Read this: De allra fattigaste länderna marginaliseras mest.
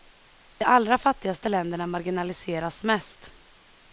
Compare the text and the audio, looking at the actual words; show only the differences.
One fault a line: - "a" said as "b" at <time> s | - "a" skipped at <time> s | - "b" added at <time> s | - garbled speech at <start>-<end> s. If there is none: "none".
none